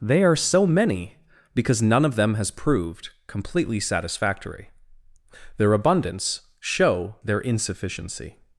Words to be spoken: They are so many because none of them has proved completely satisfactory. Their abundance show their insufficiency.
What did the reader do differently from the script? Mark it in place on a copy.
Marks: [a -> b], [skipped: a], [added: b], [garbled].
They are so many because none of them has proved completely satisfactory. Their abundance show their insufficiency.